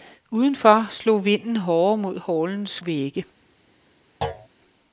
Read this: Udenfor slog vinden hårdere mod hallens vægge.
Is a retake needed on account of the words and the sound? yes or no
yes